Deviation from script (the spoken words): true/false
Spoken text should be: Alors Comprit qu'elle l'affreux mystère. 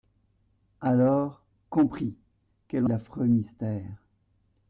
false